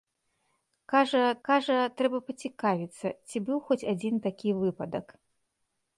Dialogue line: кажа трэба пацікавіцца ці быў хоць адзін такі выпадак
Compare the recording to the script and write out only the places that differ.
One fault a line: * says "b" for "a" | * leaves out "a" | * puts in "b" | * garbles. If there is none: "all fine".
* puts in "кажа"